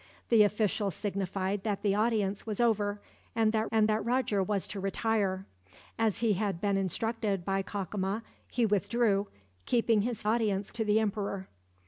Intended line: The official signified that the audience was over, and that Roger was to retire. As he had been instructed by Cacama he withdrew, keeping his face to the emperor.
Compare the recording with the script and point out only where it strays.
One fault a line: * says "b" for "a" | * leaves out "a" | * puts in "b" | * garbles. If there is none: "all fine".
* puts in "and that"
* says "audience" for "face"